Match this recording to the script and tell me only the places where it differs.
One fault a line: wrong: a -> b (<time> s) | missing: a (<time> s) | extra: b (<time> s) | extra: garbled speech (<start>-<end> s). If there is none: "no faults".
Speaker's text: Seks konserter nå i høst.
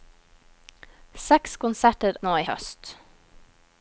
no faults